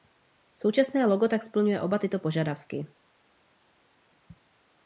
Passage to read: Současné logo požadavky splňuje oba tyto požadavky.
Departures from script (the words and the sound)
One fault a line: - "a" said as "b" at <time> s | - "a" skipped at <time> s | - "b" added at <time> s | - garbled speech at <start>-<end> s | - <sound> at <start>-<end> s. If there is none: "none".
- "požadavky" said as "tak" at 1.3 s